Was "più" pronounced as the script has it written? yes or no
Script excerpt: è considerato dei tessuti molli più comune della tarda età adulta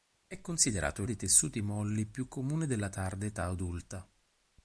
yes